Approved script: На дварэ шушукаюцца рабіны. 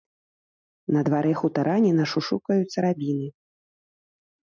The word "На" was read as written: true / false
true